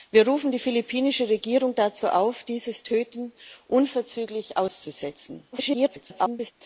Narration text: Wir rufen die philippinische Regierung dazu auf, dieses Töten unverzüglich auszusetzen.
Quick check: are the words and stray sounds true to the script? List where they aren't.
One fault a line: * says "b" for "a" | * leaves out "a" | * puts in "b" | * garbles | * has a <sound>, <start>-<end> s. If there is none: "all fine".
* garbles